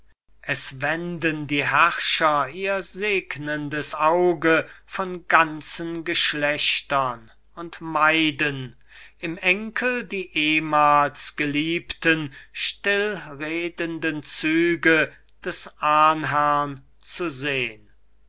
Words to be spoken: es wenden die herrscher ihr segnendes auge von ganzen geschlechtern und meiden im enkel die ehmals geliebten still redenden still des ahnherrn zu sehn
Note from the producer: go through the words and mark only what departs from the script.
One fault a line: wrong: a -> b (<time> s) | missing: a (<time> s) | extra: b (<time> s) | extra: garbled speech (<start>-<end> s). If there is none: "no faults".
wrong: still -> züge (14.2 s)